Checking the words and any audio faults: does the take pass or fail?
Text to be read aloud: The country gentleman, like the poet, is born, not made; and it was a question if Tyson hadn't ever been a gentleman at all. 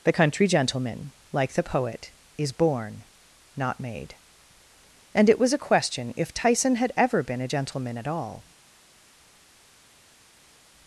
fail